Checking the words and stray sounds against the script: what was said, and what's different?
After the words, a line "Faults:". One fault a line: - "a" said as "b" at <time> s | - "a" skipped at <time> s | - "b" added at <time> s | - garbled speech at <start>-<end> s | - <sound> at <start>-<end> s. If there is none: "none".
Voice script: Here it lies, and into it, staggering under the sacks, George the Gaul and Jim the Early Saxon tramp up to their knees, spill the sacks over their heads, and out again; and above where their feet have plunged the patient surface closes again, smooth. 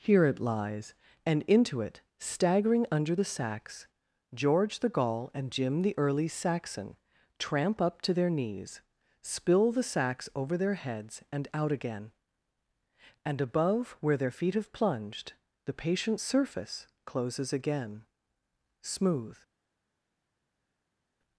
Here it lies, and into it, staggering under the sacks, George the Gaul and Jim the Early Saxon tramp up to their knees, spill the sacks over their heads, and out again; and above where their feet have plunged the patient surface closes again, smooth.
Faults:
none